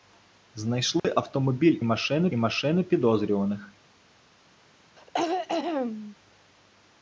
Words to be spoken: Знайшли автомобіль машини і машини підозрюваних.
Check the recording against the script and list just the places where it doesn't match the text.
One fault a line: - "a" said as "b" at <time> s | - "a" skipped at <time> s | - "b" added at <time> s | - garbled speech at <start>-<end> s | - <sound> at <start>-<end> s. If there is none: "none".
- dropout at 1.0-1.0 s
- throat clearing at 5.0-6.2 s